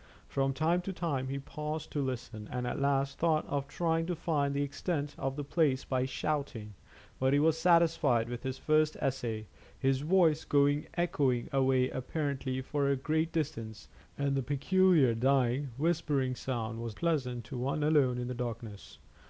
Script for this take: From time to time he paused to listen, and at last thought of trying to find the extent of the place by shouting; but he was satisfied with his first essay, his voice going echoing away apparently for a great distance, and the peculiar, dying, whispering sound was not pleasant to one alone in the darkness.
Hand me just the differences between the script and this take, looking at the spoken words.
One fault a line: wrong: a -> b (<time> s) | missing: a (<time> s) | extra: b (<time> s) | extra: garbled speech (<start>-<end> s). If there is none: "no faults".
missing: not (17.0 s)